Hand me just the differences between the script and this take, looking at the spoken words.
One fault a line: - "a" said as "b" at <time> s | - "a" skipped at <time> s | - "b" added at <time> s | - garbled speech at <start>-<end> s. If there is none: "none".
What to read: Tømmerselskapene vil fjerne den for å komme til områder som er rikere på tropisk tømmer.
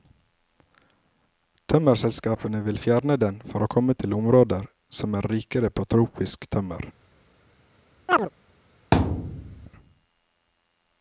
none